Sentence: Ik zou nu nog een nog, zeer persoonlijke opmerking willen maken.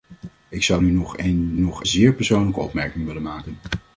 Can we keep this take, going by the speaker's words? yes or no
yes